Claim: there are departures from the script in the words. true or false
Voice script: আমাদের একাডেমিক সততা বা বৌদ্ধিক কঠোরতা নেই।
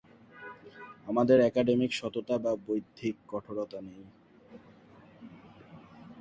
false